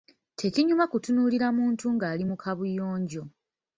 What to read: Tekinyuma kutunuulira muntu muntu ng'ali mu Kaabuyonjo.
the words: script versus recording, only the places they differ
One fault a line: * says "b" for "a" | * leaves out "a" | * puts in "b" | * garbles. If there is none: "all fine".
* leaves out "muntu"